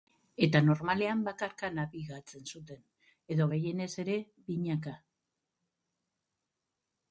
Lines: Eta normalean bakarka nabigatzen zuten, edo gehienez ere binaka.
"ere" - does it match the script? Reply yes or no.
yes